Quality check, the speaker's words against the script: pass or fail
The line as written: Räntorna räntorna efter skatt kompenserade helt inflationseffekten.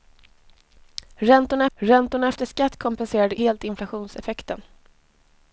pass